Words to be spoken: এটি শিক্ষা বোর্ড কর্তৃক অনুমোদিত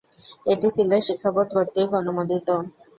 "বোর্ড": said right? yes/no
yes